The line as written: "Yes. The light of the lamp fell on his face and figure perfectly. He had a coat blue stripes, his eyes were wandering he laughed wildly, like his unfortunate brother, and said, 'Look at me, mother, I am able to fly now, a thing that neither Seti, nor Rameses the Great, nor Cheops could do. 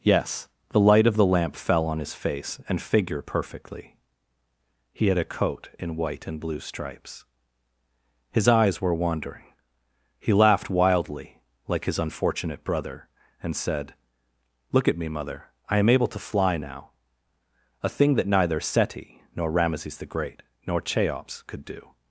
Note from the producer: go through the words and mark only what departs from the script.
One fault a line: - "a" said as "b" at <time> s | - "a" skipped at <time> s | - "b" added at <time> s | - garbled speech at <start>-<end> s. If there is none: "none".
- "in white and" added at 5.8 s